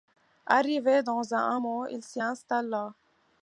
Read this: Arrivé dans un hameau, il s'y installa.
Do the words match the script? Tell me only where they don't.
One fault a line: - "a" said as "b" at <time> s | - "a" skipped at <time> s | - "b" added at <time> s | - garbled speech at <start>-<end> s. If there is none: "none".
none